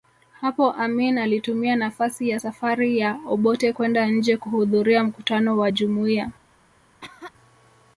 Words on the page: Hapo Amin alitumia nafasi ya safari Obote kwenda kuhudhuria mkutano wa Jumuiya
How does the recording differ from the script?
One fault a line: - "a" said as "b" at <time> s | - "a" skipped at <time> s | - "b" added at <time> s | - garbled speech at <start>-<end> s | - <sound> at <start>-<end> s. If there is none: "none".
- "ya" added at 3.0 s
- "nje" added at 4.1 s
- cough at 7.0-7.3 s